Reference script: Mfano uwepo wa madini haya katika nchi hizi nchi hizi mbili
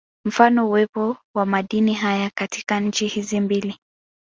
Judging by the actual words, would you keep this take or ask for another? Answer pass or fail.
fail